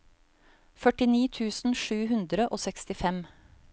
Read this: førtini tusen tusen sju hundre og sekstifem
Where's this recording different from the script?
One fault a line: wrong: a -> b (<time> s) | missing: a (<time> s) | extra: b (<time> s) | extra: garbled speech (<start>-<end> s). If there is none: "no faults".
missing: tusen (1.8 s)